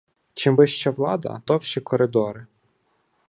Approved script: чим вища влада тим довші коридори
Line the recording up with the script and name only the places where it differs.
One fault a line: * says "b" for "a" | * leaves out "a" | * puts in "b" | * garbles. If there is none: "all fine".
* leaves out "тим"